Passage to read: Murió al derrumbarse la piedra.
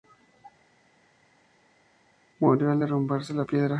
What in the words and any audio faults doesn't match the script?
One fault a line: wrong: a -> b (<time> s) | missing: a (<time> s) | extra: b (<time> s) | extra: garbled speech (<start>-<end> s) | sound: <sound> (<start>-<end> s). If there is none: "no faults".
no faults